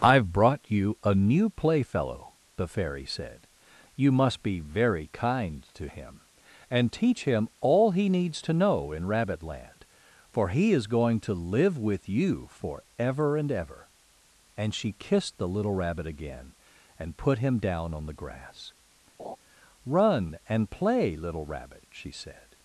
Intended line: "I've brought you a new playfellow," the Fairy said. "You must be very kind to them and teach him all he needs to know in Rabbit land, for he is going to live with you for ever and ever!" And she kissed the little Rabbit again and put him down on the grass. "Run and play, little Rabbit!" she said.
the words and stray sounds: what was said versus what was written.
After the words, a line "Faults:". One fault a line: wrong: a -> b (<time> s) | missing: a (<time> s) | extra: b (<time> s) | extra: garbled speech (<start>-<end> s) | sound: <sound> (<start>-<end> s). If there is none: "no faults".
"I've brought you a new playfellow," the Fairy said. "You must be very kind to him and teach him all he needs to know in Rabbit land, for he is going to live with you for ever and ever!" And she kissed the little Rabbit again and put him down on the grass. "Run and play, little Rabbit!" she said.
Faults:
wrong: them -> him (5.9 s)
sound: laugh (19.2-19.4 s)